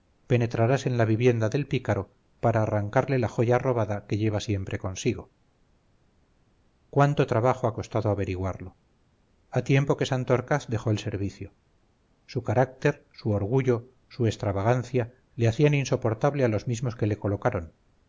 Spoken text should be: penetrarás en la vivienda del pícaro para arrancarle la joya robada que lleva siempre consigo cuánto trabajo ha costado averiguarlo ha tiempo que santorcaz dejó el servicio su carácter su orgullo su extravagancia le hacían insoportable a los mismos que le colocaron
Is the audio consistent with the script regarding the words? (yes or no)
yes